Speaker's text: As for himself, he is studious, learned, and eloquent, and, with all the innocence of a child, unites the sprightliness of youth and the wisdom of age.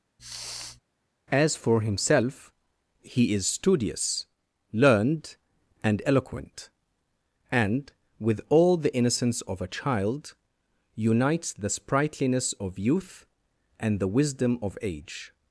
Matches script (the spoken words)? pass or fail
pass